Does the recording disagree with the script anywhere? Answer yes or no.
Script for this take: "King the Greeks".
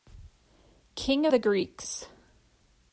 no